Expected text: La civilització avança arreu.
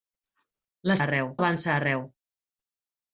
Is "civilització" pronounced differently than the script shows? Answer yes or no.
yes